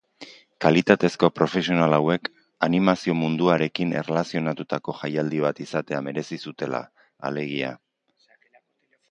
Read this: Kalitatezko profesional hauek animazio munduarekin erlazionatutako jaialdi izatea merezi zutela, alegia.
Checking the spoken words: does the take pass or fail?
fail